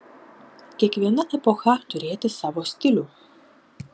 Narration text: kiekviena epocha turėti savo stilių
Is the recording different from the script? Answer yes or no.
no